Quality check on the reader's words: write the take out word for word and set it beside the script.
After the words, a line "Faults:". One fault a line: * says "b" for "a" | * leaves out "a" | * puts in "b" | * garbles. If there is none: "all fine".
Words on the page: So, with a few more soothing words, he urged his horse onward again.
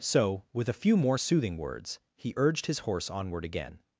So, with a few more soothing words, he urged his horse onward again.
Faults:
all fine